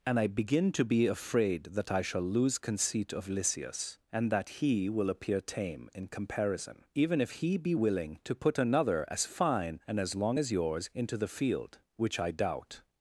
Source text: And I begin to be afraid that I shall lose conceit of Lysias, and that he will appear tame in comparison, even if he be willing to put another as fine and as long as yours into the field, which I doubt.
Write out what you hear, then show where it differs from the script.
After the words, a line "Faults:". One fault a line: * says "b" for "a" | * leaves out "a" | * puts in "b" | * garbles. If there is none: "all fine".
And I begin to be afraid that I shall lose conceit of Lysias, and that he will appear tame in comparison, even if he be willing to put another as fine and as long as yours into the field, which I doubt.
Faults:
all fine